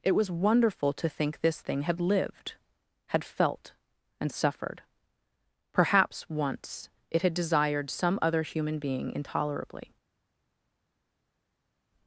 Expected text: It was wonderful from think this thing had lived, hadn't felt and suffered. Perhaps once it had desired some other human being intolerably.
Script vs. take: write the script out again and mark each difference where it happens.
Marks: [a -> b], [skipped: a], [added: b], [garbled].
It was wonderful [from -> to] think this thing had lived, [hadn't -> had] felt and suffered. Perhaps once it had desired some other human being intolerably.